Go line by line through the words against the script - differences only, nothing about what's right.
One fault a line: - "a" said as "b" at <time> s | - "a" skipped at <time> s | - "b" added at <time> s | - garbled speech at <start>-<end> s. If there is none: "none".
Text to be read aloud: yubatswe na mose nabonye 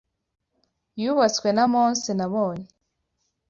none